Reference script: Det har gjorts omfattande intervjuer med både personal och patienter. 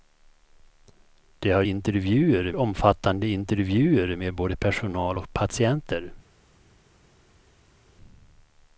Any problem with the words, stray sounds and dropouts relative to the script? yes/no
yes